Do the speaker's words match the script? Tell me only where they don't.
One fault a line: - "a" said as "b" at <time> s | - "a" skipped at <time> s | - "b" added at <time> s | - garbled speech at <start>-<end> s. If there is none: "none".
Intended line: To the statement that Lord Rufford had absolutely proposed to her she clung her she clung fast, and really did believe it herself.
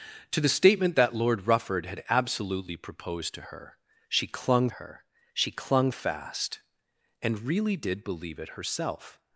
none